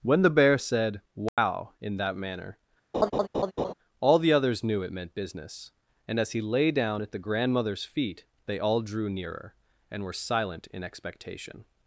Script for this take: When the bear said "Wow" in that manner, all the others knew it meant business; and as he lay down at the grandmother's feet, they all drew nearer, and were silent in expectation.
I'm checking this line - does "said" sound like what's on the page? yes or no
yes